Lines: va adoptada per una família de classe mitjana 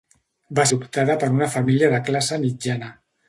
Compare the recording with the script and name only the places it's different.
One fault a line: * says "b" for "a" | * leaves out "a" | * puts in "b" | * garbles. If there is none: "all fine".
all fine